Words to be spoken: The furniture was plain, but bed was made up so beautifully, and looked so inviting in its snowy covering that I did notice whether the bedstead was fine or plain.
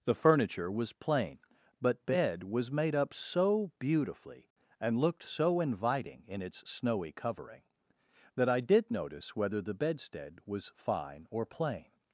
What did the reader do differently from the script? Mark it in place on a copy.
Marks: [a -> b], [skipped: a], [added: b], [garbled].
The furniture was plain, but bed was made up so beautifully, and looked so inviting in its snowy covering that I did notice whether the bedstead was fine or plain.